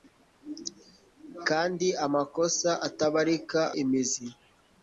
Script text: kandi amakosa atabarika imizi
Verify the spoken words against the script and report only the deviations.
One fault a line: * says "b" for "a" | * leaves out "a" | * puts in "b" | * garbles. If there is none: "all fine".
all fine